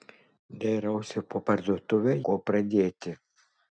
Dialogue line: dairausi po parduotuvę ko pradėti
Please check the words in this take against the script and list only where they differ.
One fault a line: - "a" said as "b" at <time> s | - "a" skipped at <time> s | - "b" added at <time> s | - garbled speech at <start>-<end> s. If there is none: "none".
none